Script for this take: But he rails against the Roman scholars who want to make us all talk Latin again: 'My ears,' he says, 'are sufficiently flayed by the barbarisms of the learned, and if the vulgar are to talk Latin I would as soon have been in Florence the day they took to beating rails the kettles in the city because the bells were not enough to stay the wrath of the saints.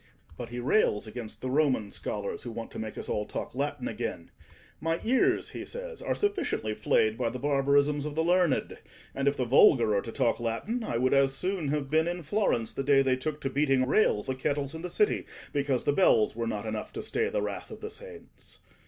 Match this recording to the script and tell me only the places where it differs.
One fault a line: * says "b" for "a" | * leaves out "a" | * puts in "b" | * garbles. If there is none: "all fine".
all fine